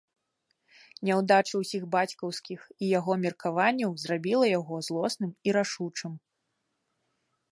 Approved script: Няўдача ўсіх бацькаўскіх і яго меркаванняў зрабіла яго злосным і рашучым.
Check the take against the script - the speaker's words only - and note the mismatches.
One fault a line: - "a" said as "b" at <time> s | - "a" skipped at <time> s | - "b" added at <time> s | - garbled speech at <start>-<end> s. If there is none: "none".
none